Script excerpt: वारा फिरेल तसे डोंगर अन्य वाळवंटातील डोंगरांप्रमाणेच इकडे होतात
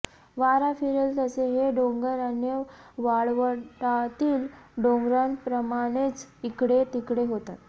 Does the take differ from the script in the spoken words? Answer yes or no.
yes